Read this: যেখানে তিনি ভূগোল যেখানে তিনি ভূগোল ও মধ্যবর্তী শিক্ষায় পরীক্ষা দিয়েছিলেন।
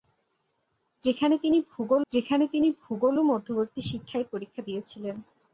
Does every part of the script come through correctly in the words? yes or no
yes